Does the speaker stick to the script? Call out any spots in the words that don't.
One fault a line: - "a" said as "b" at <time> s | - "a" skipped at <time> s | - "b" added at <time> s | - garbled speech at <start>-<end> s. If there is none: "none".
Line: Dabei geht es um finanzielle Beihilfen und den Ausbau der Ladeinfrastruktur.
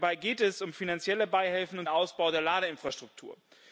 - "den" skipped at 1.9 s